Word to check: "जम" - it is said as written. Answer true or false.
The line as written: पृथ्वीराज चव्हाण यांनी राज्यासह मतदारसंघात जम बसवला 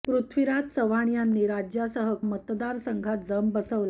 true